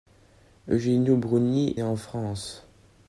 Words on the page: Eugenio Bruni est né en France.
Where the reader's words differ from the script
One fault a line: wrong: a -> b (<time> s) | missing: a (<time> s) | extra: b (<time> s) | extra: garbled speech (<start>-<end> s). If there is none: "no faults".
missing: est (1.8 s)